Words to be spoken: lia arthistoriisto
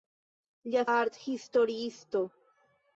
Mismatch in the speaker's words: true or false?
false